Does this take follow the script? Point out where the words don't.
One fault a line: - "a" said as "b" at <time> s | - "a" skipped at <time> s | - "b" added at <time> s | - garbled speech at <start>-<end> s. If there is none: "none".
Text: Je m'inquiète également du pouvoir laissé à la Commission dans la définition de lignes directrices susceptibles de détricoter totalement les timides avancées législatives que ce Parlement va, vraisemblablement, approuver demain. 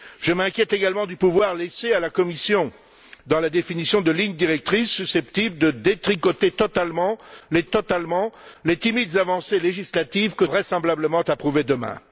- "totalement les" added at 7.7 s
- "ce Parlement va" skipped at 10.5 s